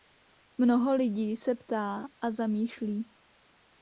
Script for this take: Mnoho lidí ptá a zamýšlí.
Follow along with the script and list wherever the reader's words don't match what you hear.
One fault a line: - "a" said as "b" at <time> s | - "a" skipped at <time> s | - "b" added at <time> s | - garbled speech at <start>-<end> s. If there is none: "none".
- "se" added at 1.4 s